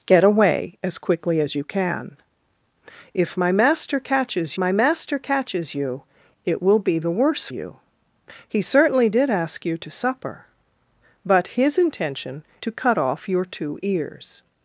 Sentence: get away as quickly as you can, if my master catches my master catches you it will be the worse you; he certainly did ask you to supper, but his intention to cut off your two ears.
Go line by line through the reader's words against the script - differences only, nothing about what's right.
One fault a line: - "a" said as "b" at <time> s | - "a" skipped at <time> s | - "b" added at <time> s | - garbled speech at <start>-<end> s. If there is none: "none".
none